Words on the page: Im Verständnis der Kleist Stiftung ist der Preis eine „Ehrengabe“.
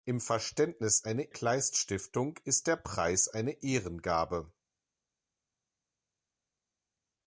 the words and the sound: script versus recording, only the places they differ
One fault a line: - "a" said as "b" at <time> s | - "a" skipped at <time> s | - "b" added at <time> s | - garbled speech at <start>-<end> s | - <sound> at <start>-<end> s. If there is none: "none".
- "der" said as "eine" at 1.0 s